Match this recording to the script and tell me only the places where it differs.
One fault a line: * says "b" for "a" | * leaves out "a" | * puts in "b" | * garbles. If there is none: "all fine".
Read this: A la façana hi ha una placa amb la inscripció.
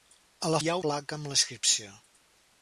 * leaves out "façana"
* leaves out "una"